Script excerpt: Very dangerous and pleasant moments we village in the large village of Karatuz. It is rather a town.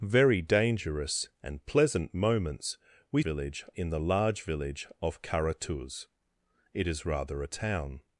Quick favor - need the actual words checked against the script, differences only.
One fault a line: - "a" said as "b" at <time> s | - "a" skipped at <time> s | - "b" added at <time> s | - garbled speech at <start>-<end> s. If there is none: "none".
none